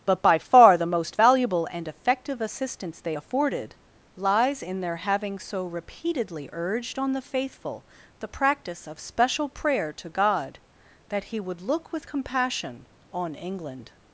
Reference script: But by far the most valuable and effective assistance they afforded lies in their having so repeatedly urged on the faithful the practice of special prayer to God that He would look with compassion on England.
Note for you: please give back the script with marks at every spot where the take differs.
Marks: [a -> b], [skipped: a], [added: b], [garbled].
But by far the most valuable and effective assistance they afforded lies in their having so repeatedly urged on the faithful the practice of special prayer to God that He would look with compassion on England.